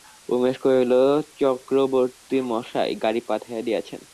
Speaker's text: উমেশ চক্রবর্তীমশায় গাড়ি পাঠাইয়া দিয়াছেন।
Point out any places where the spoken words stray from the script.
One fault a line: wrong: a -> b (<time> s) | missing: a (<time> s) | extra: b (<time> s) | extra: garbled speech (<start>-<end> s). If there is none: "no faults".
extra: কহিল (0.6 s)